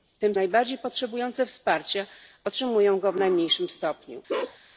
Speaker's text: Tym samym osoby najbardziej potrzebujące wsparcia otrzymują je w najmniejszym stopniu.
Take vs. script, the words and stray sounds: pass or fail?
fail